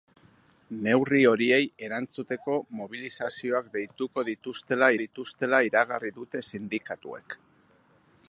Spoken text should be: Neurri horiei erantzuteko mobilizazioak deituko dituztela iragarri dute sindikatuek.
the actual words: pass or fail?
fail